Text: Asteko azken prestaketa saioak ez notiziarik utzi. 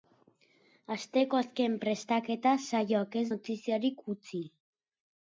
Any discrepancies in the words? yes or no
no